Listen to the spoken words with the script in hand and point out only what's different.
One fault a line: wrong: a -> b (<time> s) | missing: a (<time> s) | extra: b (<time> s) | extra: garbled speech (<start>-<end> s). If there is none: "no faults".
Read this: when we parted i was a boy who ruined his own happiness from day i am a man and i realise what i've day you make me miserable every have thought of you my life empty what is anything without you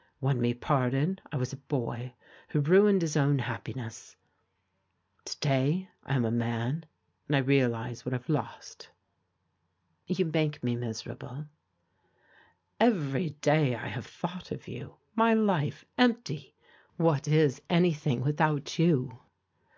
wrong: from -> to (5.2 s)
wrong: day -> lost (8.3 s)
extra: day i (13.4 s)